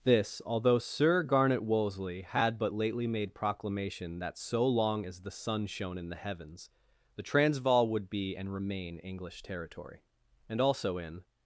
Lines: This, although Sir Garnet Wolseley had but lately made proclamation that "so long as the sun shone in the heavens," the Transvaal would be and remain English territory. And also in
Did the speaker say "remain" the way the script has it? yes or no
yes